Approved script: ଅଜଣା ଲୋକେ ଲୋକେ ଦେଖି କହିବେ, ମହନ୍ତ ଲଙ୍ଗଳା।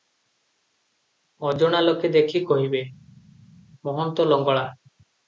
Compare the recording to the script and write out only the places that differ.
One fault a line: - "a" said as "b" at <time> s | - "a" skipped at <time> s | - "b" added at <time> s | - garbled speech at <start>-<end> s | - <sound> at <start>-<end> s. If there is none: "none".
- "ଲୋକେ" skipped at 2.1 s